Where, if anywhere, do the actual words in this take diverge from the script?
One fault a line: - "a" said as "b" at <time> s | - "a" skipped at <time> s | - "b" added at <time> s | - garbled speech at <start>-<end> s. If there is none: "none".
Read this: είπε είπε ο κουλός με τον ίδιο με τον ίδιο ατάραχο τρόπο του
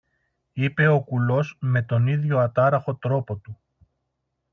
- "είπε" skipped at 0.9 s
- "με τον ίδιο" skipped at 2.4 s